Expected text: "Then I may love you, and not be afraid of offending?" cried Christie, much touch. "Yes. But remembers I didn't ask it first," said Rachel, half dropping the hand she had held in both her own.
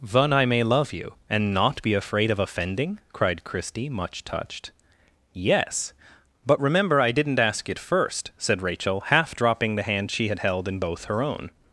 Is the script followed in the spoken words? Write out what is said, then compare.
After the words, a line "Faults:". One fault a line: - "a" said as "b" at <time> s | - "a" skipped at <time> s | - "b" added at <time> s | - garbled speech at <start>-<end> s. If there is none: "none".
"Then I may love you, and not be afraid of offending?" cried Christie, much touched. "Yes. But remember I didn't ask it first," said Rachel, half dropping the hand she had held in both her own.
Faults:
- "touch" said as "touched" at 4.2 s
- "remembers" said as "remember" at 6.6 s